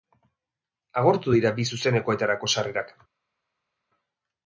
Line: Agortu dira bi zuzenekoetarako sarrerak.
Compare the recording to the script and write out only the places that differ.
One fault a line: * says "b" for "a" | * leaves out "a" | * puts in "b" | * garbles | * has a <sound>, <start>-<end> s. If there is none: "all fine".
all fine